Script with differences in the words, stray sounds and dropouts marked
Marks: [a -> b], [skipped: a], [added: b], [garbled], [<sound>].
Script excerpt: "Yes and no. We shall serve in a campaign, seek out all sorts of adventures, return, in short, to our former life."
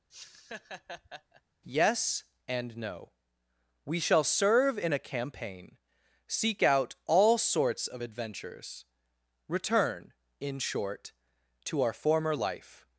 [laugh] "Yes and no. We shall serve in a campaign, seek out all sorts of adventures, return, in short, to our former life."